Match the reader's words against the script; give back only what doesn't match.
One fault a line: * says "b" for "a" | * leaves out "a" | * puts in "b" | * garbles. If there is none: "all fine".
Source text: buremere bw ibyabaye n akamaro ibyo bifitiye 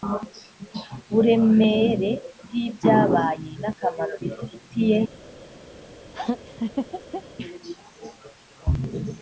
* leaves out "ibyo"